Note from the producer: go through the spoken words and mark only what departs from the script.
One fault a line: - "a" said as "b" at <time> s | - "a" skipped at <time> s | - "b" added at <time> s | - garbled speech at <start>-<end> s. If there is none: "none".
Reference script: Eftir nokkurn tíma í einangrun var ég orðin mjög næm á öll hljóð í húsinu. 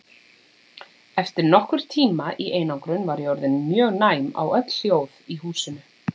none